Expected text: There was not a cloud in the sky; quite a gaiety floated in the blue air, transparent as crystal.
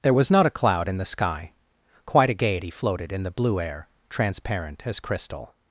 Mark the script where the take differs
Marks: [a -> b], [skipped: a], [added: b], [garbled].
There was not a cloud in the sky; quite a gaiety floated in the blue air, transparent as crystal.